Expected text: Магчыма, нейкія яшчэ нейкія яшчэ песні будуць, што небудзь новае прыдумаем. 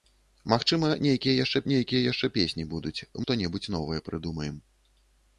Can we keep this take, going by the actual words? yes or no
yes